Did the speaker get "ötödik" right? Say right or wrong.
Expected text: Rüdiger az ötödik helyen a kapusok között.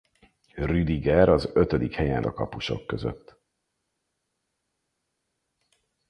right